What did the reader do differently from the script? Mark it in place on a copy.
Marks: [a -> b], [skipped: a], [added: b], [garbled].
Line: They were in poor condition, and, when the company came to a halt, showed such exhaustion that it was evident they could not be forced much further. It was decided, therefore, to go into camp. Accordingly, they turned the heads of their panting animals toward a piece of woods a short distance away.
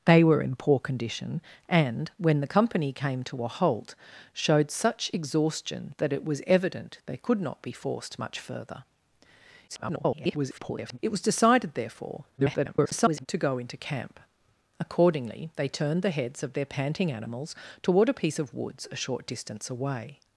They were in poor condition, and, when the company came to a halt, showed such exhaustion that it was evident they could not be forced much further. [garbled] It was decided, therefore, [garbled] to go into camp. Accordingly, they turned the heads of their panting animals toward a piece of woods a short distance away.